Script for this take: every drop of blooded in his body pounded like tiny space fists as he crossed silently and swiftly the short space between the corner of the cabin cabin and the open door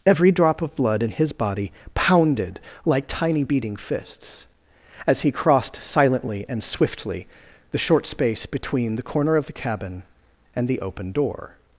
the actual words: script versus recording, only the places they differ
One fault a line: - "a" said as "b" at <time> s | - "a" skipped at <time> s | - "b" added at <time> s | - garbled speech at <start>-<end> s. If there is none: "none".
- "blooded" said as "blood" at 0.8 s
- "space" said as "beating" at 3.4 s
- "cabin" skipped at 10.0 s